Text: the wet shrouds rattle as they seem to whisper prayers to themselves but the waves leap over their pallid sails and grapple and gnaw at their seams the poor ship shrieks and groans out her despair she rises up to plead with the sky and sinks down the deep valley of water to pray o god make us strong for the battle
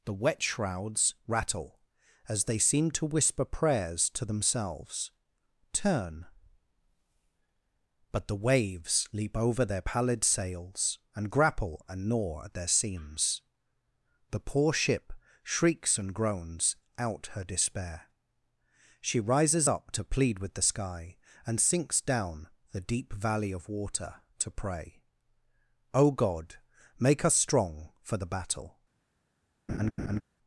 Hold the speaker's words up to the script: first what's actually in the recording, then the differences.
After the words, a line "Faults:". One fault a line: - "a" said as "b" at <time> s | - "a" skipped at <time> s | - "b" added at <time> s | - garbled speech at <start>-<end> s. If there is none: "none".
the wet shrouds rattle as they seem to whisper prayers to themselves turn but the waves leap over their pallid sails and grapple and gnaw at their seams the poor ship shrieks and groans out her despair she rises up to plead with the sky and sinks down the deep valley of water to pray o god make us strong for the battle
Faults:
- "turn" added at 5.7 s